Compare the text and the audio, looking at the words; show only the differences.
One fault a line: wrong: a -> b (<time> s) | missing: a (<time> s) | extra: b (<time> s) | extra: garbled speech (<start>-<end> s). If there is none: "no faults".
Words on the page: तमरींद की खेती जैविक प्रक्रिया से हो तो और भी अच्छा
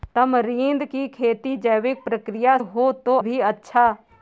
missing: से (2.6 s)
missing: और (3.2 s)